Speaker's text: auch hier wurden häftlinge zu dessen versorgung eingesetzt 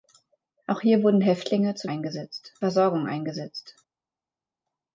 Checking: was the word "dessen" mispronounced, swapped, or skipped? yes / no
yes